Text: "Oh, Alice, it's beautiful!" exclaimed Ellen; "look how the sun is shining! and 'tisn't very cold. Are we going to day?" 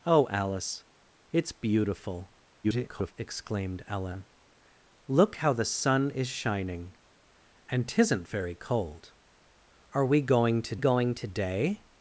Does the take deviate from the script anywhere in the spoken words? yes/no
yes